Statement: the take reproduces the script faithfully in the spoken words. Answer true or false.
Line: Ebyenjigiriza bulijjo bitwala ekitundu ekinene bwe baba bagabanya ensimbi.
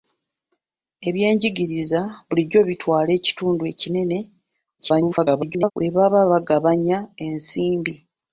false